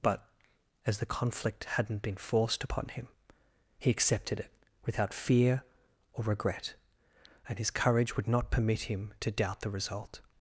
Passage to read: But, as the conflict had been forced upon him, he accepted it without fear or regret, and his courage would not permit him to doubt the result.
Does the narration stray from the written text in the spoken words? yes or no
yes